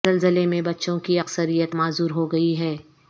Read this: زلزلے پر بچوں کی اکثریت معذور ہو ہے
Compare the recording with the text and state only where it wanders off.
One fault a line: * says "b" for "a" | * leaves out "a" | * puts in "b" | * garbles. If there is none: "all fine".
* says "میں" for "پر"
* puts in "گئی"